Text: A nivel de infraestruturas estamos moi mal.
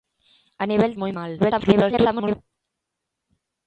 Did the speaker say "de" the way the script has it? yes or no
no